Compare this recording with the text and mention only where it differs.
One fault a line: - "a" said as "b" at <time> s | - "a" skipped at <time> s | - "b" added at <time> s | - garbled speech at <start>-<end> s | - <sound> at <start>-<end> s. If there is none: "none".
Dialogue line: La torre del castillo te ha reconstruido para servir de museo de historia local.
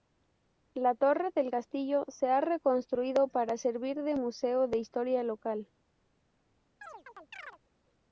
- "te" said as "se" at 2.1 s
- chirp at 6.8-7.6 s